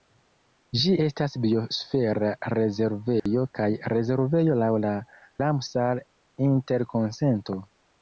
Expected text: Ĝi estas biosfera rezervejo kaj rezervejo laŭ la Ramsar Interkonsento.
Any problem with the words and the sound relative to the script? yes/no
yes